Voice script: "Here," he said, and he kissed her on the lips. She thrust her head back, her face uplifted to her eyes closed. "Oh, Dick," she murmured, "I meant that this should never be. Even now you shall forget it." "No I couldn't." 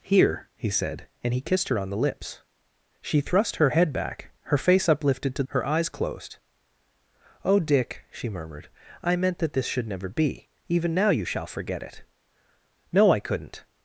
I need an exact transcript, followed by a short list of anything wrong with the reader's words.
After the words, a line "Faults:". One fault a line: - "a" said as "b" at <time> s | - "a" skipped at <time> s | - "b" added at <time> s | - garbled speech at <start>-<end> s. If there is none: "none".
"Here," he said, and he kissed her on the lips. She thrust her head back, her face uplifted to her eyes closed. "Oh, Dick," she murmured, "I meant that this should never be. Even now you shall forget it." "No I couldn't."
Faults:
none